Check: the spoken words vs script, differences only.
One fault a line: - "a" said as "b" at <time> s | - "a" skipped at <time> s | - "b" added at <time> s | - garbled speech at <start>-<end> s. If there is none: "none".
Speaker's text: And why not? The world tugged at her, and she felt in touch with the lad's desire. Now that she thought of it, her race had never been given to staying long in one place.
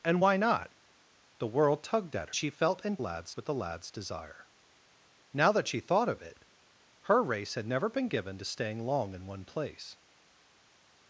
- "her and" skipped at 2.3 s
- "touch" said as "lad's" at 3.0 s